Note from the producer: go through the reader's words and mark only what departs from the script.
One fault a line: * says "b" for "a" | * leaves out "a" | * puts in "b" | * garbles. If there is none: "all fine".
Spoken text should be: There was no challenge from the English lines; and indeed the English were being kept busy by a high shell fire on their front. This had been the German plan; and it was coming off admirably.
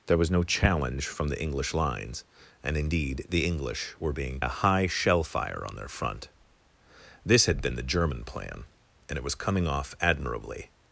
* leaves out "kept busy by"